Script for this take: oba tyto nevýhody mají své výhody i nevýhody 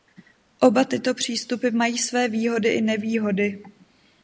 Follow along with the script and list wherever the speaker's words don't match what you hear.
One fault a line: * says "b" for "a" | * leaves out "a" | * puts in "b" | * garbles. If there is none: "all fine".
* says "přístupy" for "nevýhody"